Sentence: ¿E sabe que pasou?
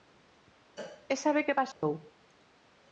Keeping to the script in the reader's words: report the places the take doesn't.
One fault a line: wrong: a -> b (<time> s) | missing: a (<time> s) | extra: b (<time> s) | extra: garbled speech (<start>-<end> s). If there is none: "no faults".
no faults